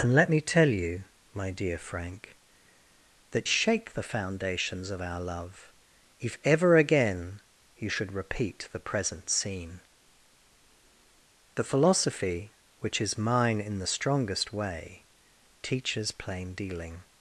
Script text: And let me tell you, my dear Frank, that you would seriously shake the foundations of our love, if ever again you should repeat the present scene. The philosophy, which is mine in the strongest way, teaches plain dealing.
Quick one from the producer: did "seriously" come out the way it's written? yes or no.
no